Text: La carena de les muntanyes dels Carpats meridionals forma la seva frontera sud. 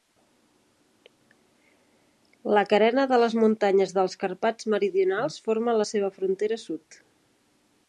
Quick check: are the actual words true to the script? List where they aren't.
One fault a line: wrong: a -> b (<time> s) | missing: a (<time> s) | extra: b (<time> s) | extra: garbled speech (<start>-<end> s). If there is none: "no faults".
no faults